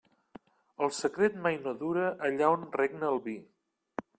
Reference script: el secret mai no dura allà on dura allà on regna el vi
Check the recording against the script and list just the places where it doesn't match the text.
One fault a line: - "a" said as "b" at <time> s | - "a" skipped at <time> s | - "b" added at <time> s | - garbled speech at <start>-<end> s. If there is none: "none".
- "dura allà on" skipped at 2.7 s